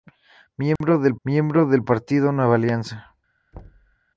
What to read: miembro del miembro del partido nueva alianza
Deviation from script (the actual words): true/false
false